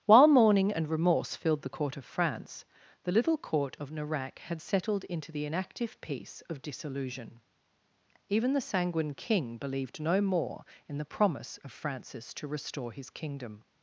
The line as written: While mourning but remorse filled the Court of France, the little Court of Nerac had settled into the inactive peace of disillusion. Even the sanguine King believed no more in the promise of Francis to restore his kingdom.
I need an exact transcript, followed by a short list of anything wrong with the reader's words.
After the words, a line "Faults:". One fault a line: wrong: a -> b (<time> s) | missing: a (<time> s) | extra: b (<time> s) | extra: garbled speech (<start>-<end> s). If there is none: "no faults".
While mourning and remorse filled the Court of France, the little Court of Nerac had settled into the inactive peace of disillusion. Even the sanguine King believed no more in the promise of Francis to restore his kingdom.
Faults:
wrong: but -> and (0.7 s)